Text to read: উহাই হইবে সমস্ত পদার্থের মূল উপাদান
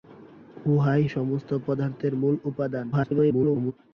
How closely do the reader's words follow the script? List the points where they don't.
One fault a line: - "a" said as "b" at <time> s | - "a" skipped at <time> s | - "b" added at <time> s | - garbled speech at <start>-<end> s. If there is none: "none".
- "হইবে" skipped at 1.0 s
- garbled speech at 2.9-3.7 s